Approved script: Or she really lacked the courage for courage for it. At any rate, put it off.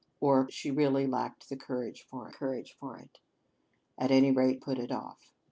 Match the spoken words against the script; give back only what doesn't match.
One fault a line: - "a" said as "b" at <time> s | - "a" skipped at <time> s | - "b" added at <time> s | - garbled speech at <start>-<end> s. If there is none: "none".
none